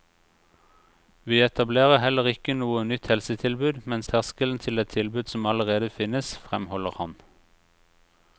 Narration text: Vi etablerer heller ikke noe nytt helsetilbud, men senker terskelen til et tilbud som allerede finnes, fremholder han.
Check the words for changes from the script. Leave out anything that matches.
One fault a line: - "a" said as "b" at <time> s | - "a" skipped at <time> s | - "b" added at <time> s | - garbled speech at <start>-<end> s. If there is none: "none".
- "senker" skipped at 4.0 s